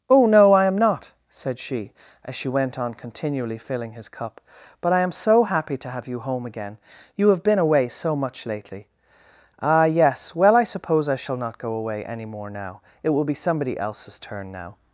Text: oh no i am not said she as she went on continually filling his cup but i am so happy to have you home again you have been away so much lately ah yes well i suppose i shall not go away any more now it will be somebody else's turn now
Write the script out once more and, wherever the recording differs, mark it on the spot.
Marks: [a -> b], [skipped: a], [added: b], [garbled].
oh no i am not said she as she went on continually filling his cup but i am so happy to have you home again you have been away so much lately ah yes well i suppose i shall not go away any more now it will be somebody else's turn now